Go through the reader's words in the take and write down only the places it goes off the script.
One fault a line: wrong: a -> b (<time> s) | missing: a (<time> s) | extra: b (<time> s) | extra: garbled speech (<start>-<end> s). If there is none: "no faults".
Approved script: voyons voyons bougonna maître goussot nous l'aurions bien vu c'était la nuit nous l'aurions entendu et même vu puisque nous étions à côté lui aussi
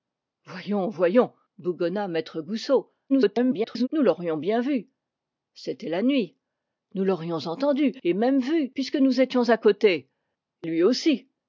extra: garbled speech (3.1-3.9 s)